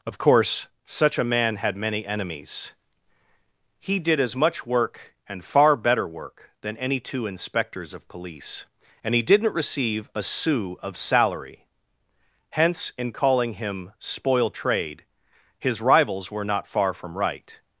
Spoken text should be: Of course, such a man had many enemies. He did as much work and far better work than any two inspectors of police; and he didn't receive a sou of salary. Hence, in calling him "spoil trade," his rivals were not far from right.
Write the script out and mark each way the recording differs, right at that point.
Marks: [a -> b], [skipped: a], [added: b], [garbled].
Of course, such a man had many enemies. He did as much work and far better work than any two inspectors of police; and he didn't receive a sou of salary. Hence, in calling him "spoil trade," his rivals were not far from right.